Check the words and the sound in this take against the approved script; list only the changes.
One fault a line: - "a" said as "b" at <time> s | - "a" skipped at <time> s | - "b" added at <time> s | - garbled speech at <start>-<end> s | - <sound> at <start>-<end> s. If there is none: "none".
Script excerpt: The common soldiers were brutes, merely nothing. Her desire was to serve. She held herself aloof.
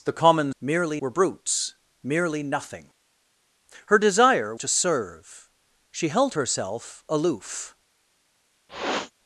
- "soldiers" said as "merely" at 0.6 s
- "was" skipped at 4.6 s
- sniff at 8.7-9.1 s